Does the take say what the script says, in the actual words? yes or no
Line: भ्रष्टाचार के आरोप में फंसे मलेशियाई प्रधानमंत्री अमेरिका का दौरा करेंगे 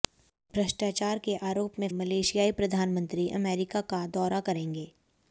no